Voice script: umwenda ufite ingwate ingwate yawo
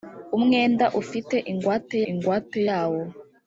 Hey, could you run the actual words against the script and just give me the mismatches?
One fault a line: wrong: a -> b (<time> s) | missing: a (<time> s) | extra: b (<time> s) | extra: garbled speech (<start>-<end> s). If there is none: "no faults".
no faults